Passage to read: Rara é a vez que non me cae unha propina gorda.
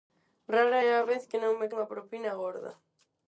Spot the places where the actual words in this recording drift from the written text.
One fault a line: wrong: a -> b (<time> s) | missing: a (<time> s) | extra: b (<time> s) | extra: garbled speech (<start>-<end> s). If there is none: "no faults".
missing: cae (1.7 s)